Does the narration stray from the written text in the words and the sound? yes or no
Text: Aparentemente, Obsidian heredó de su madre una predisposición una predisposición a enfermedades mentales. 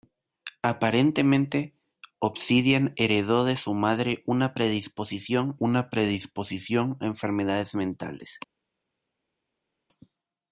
no